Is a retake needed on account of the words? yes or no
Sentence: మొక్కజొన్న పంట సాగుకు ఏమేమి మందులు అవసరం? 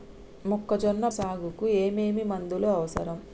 yes